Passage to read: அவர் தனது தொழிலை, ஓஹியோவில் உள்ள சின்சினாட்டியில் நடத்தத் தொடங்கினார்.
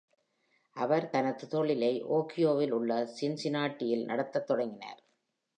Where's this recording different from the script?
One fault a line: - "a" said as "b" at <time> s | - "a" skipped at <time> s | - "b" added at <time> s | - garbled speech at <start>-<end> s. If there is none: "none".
none